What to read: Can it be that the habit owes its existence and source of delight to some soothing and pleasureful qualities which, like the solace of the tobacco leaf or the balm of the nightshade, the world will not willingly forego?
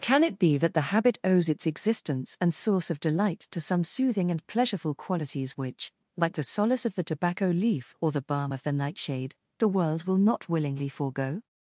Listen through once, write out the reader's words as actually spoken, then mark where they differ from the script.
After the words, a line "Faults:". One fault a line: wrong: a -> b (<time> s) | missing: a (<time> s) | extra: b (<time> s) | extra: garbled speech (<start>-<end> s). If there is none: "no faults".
Can it be that the habit owes its existence and source of delight to some soothing and pleasureful qualities which, like the solace of the tobacco leaf or the balm of the nightshade, the world will not willingly forego?
Faults:
no faults